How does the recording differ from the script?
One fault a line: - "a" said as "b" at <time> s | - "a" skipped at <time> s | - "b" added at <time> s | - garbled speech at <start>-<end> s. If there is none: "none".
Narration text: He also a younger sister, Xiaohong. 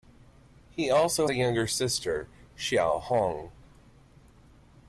none